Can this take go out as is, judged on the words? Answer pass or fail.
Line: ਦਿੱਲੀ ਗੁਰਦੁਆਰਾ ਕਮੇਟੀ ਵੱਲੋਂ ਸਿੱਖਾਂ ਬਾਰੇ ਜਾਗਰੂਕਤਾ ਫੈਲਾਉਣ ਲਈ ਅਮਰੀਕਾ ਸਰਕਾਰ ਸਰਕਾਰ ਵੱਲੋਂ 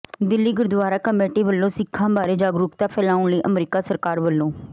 fail